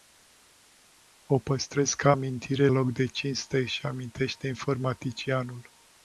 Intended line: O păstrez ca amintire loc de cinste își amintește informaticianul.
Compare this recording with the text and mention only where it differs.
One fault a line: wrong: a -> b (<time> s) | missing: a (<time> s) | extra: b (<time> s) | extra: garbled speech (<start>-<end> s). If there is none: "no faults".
no faults